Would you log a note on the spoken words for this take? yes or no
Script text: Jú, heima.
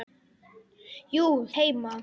no